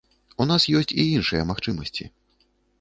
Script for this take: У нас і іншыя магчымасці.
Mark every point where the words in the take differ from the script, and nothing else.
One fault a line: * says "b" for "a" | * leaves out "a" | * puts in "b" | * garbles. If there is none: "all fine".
* puts in "ёсць"